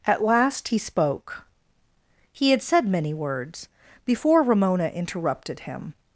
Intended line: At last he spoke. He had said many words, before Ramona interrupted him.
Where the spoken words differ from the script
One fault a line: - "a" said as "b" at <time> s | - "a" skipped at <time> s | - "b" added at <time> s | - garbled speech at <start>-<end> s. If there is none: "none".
none